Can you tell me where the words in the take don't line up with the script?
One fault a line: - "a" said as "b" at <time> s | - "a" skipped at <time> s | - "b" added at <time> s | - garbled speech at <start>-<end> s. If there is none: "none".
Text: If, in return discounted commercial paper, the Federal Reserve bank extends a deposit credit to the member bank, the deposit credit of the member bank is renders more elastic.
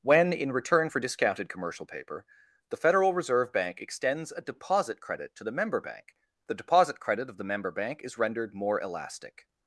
- "If" said as "When" at 0.0 s
- "for" added at 0.9 s
- "renders" said as "rendered" at 8.2 s